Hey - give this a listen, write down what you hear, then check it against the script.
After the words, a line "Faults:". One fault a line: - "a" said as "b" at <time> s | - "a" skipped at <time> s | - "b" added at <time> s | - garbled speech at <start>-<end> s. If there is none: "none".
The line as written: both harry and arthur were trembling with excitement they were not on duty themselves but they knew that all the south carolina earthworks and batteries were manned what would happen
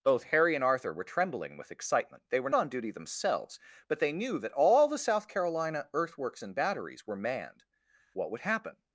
both harry and arthur were trembling with excitement they were on duty themselves but they knew that all the south carolina earthworks and batteries were manned what would happen
Faults:
- "not" skipped at 2.5 s